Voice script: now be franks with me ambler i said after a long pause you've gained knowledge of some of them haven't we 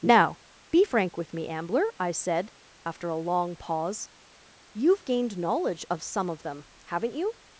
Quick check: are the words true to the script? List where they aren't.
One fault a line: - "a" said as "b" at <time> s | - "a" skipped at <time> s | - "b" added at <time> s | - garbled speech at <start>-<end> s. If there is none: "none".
- "franks" said as "frank" at 0.8 s
- "we" said as "you" at 7.1 s